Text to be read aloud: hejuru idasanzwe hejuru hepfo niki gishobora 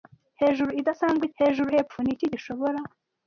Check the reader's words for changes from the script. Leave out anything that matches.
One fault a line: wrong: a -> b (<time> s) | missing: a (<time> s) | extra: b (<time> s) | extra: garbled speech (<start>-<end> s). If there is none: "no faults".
no faults